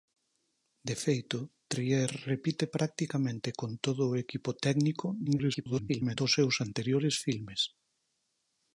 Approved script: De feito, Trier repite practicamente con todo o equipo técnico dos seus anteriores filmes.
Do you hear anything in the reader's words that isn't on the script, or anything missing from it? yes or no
yes